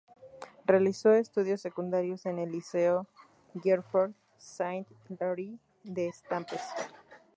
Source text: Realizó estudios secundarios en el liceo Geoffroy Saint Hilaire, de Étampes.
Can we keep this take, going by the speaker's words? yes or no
yes